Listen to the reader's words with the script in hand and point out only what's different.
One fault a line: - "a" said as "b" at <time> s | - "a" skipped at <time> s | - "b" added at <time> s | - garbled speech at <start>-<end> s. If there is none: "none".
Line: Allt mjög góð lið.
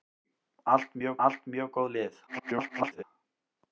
- "allt mjög" added at 1.3 s
- garbled speech at 2.3-3.0 s